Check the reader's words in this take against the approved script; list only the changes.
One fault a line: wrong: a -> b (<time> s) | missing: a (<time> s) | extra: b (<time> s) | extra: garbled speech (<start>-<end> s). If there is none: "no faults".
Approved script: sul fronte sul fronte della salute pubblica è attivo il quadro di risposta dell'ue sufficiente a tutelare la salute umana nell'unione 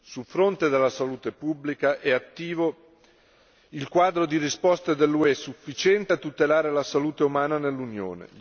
missing: sul fronte (0.7 s)